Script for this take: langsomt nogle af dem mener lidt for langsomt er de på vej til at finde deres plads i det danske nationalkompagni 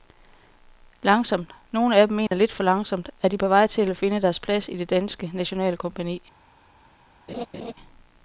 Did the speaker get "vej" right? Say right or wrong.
right